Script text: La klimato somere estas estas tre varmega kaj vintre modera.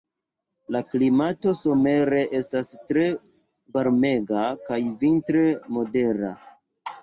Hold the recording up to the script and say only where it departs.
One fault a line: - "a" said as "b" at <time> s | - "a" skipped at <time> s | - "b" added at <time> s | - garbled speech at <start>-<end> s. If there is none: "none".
- "estas" skipped at 2.7 s